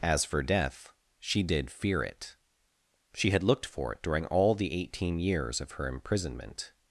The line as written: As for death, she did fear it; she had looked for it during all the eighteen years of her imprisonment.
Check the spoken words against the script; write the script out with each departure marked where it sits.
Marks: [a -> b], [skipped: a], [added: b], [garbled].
As for death, she did fear it; she had looked for it during all the eighteen years of her imprisonment.